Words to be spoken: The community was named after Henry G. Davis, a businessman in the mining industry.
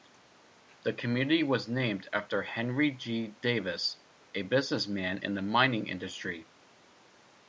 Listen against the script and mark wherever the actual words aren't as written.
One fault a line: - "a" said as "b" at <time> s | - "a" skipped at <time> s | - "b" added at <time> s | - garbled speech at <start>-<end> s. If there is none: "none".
none